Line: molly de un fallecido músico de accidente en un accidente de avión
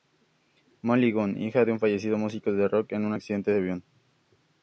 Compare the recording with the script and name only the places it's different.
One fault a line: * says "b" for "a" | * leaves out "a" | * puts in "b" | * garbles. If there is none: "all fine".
* puts in "gunn hija"
* says "rock" for "accidente"